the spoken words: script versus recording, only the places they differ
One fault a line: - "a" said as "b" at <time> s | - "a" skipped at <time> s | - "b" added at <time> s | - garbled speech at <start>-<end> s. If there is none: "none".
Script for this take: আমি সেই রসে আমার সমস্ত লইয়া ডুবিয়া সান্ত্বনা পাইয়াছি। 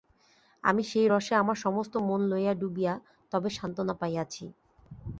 - "মন" added at 2.1 s
- "তবে" added at 3.3 s